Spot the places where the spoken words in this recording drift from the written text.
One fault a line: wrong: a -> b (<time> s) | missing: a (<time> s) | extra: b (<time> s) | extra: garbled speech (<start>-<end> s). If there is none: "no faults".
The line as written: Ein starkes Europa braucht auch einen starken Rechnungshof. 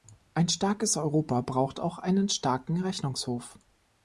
no faults